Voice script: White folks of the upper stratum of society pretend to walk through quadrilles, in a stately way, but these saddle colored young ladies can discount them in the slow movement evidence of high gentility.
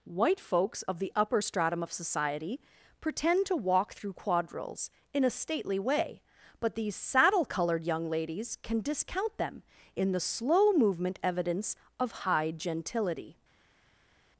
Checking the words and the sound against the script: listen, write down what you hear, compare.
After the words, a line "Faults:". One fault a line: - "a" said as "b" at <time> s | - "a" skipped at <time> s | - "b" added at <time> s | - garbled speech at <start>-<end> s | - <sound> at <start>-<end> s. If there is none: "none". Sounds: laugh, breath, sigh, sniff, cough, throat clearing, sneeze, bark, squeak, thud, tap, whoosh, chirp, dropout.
White folks of the upper stratum of society pretend to walk through quadrilles, in a stately way, but these saddle colored young ladies can discount them in the slow movement evidence of high gentility.
Faults:
none